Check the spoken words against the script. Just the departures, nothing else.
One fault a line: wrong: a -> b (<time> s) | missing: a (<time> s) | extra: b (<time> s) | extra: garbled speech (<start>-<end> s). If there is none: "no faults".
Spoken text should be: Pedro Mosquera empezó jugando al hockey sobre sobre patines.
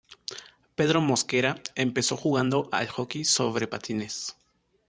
missing: sobre (3.7 s)